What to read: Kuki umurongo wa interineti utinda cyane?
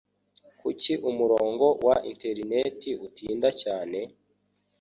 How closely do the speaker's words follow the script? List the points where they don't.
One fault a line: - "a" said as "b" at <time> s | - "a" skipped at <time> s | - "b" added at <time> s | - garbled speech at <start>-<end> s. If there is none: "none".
none